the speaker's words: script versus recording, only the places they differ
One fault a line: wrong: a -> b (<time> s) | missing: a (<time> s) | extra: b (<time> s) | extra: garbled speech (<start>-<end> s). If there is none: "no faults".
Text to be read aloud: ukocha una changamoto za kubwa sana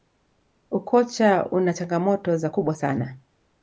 no faults